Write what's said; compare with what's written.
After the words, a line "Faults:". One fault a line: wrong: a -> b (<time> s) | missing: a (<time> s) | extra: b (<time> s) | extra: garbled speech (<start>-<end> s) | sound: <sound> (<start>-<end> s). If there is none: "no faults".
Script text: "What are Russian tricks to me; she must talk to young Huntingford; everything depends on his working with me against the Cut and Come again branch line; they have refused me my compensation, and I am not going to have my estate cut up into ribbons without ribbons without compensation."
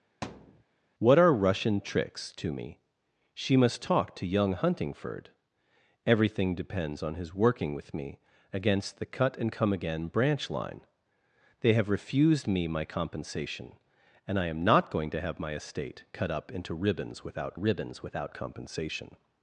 "What are Russian tricks to me; she must talk to young Huntingford; everything depends on his working with me against the Cut and Come again branch line; they have refused me my compensation, and I am not going to have my estate cut up into ribbons without ribbons without compensation."
Faults:
sound: thud (0.2-0.6 s)